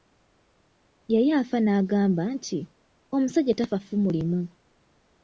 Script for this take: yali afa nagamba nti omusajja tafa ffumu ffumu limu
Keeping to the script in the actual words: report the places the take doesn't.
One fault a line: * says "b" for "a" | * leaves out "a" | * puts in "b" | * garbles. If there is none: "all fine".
* leaves out "ffumu"